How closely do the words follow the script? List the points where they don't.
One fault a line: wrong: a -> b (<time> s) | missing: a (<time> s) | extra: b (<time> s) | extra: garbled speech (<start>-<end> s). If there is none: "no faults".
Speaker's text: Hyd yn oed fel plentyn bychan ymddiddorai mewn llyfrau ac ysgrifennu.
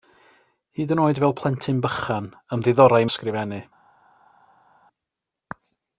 missing: mewn llyfrau ac (3.0 s)